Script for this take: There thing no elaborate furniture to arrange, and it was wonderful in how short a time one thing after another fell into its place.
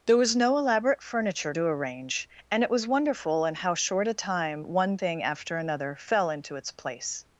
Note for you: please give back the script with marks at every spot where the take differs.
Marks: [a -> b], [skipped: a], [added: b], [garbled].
There [thing -> was] no elaborate furniture to arrange, and it was wonderful in how short a time one thing after another fell into its place.